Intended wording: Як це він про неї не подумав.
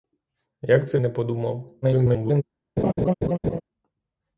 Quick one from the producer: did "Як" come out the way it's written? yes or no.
yes